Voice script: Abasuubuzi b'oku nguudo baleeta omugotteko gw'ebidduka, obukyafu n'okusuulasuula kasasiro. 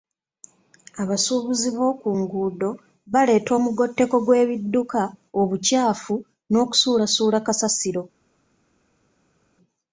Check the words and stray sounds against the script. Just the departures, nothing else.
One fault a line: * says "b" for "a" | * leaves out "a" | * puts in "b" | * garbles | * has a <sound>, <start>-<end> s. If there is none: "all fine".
all fine